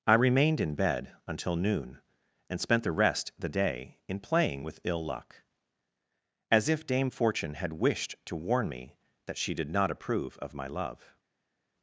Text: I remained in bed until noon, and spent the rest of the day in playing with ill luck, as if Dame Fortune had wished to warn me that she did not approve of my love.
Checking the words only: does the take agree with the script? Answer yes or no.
no